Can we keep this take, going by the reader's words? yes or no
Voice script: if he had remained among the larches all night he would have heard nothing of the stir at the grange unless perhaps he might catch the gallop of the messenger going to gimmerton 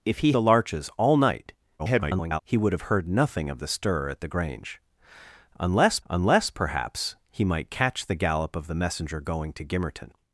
no